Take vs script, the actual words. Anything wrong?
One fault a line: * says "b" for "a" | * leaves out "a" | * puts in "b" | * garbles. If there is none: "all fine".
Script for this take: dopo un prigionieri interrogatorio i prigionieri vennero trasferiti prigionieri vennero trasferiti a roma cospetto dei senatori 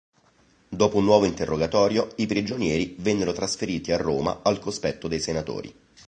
* says "nuovo" for "prigionieri"
* leaves out "prigionieri vennero trasferiti"
* puts in "al"